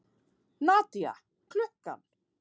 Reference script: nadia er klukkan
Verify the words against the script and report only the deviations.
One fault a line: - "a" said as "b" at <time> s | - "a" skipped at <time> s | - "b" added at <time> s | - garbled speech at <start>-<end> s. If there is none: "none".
none